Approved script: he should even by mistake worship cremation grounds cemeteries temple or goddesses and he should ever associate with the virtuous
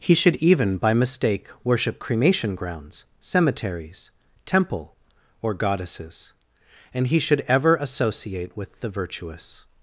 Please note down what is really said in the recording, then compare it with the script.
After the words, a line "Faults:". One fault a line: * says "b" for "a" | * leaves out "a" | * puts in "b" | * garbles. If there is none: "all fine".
he should even by mistake worship cremation grounds cemeteries temple or goddesses and he should ever associate with the virtuous
Faults:
all fine